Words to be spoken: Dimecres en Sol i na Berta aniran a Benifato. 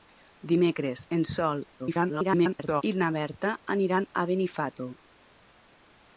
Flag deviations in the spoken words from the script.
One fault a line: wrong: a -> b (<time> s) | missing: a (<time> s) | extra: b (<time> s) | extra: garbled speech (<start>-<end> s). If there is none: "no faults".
extra: garbled speech (1.8-2.8 s)